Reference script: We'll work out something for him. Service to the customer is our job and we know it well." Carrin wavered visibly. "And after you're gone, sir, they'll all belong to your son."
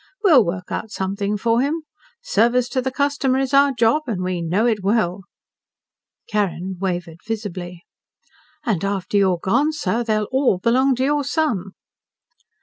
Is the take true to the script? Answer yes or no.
yes